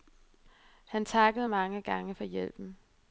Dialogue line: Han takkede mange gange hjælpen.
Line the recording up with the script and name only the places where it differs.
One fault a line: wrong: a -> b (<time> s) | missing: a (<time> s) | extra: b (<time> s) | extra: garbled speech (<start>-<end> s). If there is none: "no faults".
extra: for (2.1 s)